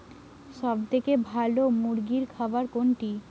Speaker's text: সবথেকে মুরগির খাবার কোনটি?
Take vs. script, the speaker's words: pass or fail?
fail